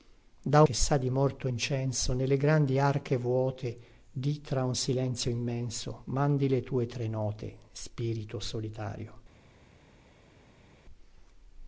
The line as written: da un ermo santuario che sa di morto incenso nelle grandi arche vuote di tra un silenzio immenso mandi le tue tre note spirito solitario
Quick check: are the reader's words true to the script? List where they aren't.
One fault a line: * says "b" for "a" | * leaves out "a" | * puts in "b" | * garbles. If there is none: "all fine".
* leaves out "un ermo santuario"